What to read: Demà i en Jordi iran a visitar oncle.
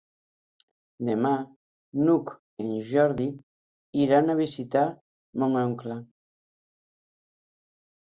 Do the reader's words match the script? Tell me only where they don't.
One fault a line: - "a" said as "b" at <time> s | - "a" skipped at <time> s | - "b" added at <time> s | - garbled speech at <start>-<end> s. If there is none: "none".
- "n'Hug" added at 2.0 s
- "mon" added at 5.5 s